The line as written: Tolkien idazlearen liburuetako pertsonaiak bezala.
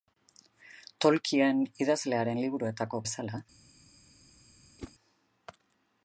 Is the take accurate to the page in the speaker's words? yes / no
no